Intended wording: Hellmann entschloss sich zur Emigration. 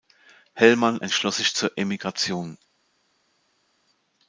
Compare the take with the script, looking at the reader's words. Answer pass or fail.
pass